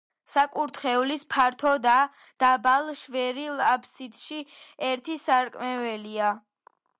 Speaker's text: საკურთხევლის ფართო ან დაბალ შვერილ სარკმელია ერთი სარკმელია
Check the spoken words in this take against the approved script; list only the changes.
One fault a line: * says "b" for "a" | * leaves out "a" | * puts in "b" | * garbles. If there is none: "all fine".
* says "და" for "ან"
* says "აფსიდში" for "სარკმელია"